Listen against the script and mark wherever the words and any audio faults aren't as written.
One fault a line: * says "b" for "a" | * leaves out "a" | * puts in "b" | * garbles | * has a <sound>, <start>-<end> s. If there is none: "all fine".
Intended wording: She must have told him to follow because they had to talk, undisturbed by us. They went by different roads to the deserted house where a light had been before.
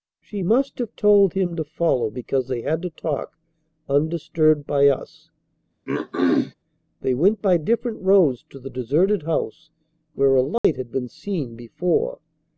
* has a throat clearing, 5.9-6.5 s
* has a dropout, 10.6-10.6 s
* puts in "seen"